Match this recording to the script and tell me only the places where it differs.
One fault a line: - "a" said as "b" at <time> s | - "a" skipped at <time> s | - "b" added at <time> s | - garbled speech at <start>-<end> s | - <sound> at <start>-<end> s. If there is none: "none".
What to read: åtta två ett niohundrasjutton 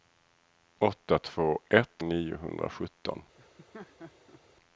- laugh at 3.4-4.4 s